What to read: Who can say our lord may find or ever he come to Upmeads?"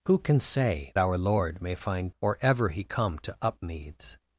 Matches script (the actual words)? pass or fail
pass